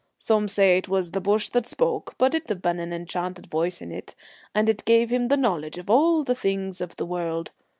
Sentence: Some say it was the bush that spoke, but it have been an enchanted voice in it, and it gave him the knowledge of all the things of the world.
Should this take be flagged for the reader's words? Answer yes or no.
no